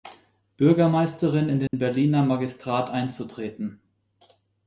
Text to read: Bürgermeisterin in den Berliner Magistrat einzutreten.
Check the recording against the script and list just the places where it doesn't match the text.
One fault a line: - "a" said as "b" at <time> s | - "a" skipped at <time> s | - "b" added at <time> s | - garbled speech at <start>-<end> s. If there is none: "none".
none